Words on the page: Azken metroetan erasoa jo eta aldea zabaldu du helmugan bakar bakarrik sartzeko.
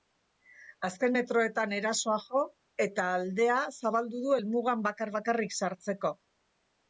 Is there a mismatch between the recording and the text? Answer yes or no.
no